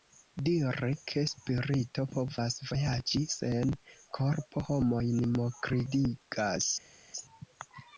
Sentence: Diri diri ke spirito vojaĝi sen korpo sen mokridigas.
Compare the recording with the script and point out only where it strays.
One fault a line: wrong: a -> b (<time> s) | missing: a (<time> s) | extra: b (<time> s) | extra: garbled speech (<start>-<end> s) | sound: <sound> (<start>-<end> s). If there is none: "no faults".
missing: diri (0.9 s)
extra: povas (2.2 s)
wrong: sen -> homojn (4.7 s)